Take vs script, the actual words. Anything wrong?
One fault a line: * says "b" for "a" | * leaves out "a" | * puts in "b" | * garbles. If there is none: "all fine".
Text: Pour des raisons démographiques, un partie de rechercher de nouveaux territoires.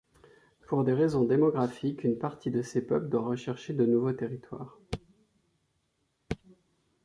* says "une" for "un"
* puts in "ces peuples doit"